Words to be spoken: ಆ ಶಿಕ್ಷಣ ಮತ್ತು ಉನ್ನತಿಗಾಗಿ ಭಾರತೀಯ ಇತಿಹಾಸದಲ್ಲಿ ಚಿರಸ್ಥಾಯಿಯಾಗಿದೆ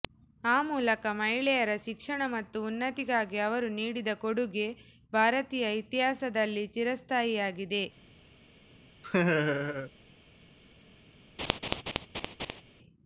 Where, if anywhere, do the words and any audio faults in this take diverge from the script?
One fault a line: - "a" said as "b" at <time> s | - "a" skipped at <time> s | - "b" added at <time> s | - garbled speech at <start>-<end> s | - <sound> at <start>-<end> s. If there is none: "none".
- "ಮೂಲಕ ಮಹಿಳೆಯರ" added at 0.7 s
- "ಅವರು ನೀಡಿದ ಕೊಡುಗೆ" added at 3.4 s
- laugh at 9.0-9.9 s
- laugh at 11.4-12.6 s